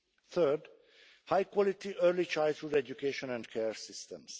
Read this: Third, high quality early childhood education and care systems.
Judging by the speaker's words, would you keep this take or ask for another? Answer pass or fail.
pass